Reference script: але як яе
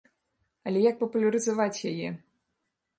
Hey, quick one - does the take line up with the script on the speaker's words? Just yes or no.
no